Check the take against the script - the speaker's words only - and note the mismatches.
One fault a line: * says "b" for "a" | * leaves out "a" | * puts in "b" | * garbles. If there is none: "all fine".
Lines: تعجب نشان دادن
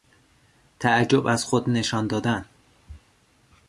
* puts in "از خود"